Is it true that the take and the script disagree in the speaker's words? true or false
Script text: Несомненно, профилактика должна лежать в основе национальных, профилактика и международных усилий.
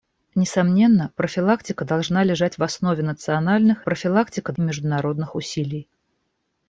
false